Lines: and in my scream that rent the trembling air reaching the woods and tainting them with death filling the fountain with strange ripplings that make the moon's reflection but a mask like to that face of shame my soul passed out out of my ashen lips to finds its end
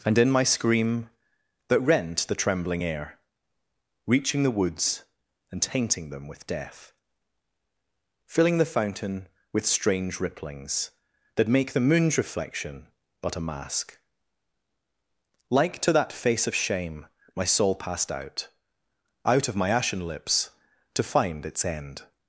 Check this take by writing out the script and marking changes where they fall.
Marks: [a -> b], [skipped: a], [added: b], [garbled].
and in my scream that rent the trembling air reaching the woods and tainting them with death filling the fountain with strange ripplings that make the moon's reflection but a mask like to that face of shame my soul passed out out of my ashen lips to [finds -> find] its end